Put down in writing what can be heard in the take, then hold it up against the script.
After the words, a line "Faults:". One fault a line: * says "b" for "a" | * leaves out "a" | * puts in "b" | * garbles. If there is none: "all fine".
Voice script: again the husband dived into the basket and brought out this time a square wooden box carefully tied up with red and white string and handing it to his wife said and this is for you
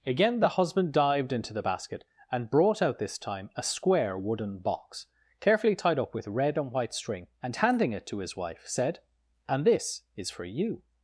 again the husband dived into the basket and brought out this time a square wooden box carefully tied up with red and white string and handing it to his wife said and this is for you
Faults:
all fine